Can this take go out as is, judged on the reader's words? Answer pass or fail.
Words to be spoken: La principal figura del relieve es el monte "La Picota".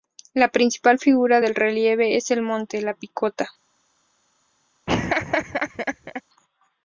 pass